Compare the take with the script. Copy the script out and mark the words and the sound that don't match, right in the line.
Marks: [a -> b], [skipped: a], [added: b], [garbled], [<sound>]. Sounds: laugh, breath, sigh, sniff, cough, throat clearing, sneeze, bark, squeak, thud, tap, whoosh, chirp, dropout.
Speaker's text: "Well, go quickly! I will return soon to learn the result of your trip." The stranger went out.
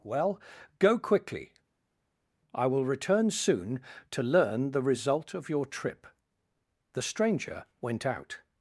"Well, go quickly! I will return soon to learn the result of your trip." The stranger went out.